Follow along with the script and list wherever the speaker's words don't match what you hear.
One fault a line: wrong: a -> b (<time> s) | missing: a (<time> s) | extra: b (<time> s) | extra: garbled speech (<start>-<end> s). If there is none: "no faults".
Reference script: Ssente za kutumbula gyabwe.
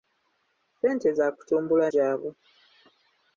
no faults